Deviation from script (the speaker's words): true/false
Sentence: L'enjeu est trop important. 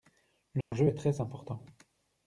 true